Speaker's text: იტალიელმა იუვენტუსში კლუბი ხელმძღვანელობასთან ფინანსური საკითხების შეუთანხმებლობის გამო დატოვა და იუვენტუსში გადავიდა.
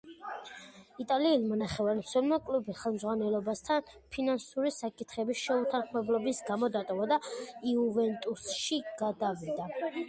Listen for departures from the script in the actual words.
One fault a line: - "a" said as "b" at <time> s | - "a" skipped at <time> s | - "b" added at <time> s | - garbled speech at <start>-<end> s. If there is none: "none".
- "იუვენტუსში" said as "ნახევარმცველმა" at 1.6 s